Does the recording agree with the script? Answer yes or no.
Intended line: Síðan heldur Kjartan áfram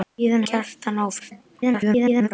no